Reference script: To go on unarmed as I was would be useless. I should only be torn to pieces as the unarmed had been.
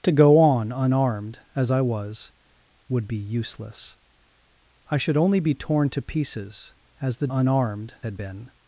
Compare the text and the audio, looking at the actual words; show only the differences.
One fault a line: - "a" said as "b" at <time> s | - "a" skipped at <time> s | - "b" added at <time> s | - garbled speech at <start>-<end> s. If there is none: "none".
none